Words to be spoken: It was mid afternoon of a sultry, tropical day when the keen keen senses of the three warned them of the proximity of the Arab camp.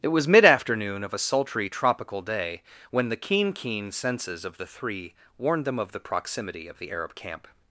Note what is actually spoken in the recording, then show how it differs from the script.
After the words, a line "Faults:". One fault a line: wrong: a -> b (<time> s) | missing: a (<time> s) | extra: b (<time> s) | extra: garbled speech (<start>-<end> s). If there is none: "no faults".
It was mid afternoon of a sultry, tropical day when the keen keen senses of the three warned them of the proximity of the Arab camp.
Faults:
no faults